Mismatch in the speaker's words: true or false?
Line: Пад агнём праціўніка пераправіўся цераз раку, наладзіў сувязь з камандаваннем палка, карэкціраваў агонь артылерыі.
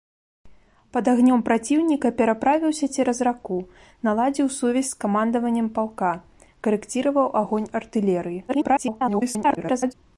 true